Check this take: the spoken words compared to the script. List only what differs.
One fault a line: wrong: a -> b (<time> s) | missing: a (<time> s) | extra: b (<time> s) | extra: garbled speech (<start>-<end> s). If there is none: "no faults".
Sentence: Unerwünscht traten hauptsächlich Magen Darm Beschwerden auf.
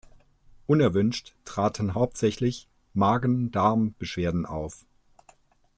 no faults